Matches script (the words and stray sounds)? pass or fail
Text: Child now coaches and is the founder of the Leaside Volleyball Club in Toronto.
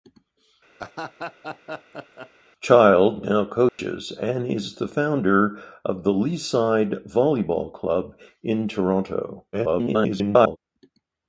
fail